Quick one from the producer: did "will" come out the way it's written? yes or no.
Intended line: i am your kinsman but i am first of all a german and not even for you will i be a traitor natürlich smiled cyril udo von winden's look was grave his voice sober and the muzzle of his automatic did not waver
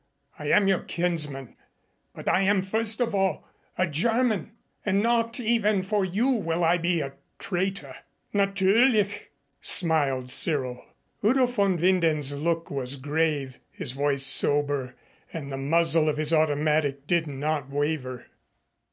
yes